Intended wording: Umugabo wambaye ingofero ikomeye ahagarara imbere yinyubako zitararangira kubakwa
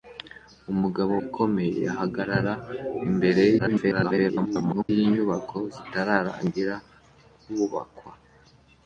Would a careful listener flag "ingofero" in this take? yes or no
yes